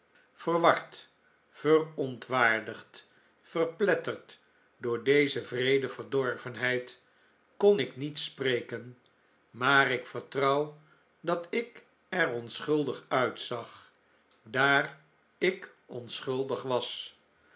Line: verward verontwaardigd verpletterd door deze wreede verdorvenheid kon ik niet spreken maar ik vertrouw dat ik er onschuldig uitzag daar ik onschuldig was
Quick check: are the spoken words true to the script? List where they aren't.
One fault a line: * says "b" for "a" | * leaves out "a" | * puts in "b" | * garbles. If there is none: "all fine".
all fine